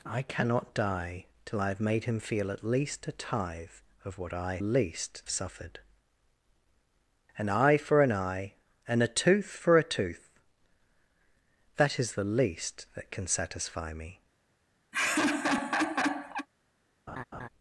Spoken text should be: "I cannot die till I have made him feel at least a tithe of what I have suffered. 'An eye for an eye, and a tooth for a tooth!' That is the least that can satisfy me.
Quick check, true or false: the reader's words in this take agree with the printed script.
false